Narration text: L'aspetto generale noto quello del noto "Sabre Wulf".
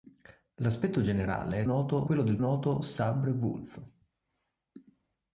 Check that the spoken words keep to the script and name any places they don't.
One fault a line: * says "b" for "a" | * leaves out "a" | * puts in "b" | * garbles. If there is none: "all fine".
all fine